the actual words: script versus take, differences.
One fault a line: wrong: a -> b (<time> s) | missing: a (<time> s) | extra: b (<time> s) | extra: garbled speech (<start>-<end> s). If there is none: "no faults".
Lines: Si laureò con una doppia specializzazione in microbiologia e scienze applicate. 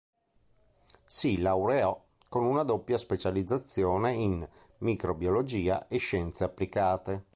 no faults